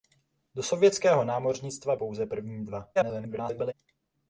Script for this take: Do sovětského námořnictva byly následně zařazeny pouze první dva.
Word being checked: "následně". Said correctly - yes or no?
no